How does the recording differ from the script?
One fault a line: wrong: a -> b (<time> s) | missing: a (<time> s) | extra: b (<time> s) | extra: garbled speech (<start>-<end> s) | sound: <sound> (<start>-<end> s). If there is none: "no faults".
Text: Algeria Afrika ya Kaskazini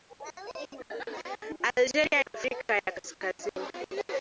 no faults